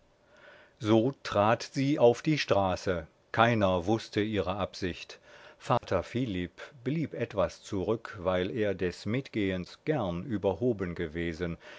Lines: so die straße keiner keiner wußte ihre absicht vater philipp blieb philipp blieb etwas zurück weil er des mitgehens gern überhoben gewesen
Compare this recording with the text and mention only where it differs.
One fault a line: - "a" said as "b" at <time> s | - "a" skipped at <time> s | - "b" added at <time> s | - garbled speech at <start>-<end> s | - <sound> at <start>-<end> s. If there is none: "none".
- "trat sie auf" added at 1.2 s
- "keiner" skipped at 3.8 s
- dropout at 5.8-5.8 s
- "philipp blieb" skipped at 7.1 s